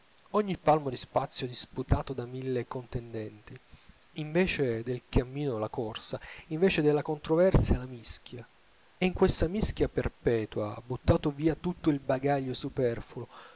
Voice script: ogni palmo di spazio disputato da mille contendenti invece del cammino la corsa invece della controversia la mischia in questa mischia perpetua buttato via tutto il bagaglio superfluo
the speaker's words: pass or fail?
pass